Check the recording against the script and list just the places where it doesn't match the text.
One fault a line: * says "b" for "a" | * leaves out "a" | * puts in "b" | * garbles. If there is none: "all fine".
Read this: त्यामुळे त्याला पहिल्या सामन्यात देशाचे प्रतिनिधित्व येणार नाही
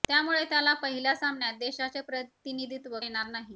all fine